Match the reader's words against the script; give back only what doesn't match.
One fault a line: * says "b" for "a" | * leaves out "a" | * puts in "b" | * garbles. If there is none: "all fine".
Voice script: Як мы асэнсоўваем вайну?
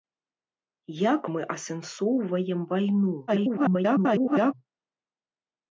* garbles